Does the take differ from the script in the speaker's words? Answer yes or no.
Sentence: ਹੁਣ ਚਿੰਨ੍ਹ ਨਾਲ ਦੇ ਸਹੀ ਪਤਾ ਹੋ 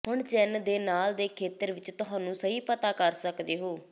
yes